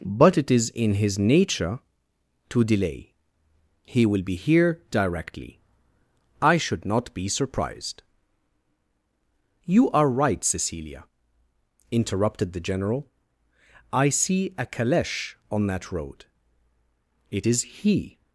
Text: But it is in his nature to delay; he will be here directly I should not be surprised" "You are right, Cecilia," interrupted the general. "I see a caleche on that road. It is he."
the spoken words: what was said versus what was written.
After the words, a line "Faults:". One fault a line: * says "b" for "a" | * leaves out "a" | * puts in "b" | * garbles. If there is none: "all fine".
But it is in his nature to delay; he will be here directly I should not be surprised" "You are right, Cecilia," interrupted the general. "I see a caleche on that road. It is he."
Faults:
all fine